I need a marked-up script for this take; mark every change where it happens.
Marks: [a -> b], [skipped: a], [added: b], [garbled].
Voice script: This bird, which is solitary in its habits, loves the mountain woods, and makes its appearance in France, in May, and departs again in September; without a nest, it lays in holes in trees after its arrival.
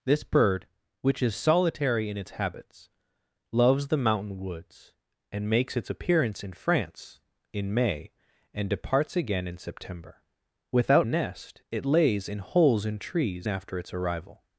This bird, which is solitary in its habits, loves the mountain woods, and makes its appearance in France, in May, and departs again in September; without a nest, it lays in holes in trees after its arrival.